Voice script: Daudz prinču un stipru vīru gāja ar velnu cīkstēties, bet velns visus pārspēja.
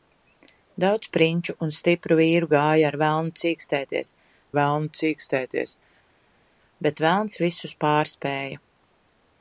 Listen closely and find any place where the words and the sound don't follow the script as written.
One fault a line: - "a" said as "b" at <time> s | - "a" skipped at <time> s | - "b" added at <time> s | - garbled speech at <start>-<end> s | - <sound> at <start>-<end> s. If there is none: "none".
- "velnu cīkstēties" added at 4.6 s